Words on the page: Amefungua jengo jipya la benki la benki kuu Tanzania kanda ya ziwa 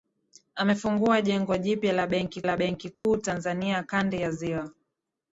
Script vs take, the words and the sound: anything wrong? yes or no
yes